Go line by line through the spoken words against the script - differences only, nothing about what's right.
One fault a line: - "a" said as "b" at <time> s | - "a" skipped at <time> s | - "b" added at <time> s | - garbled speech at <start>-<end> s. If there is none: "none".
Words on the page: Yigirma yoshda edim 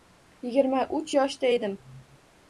- "uch" added at 1.0 s